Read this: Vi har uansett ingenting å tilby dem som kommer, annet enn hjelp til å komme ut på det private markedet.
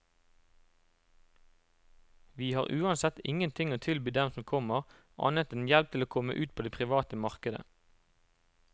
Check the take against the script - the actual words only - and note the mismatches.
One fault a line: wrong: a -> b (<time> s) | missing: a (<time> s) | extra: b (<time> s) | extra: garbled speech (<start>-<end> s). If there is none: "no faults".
no faults